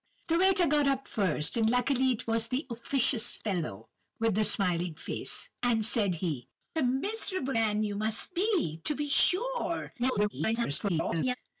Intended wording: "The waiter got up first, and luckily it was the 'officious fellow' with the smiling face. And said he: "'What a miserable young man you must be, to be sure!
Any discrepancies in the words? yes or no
yes